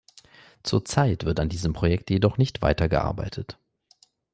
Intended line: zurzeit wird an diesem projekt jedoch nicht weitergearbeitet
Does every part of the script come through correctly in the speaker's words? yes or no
yes